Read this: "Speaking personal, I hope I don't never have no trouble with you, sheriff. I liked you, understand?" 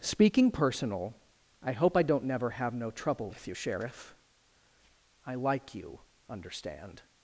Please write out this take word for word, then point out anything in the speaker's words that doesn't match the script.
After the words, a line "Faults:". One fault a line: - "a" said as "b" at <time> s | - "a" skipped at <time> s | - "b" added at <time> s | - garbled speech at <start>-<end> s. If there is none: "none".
"Speaking personal, I hope I don't never have no trouble with you, sheriff. I like you, understand?"
Faults:
- "liked" said as "like" at 5.3 s